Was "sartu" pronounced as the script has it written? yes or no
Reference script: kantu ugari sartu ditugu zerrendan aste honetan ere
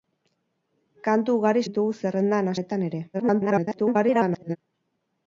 no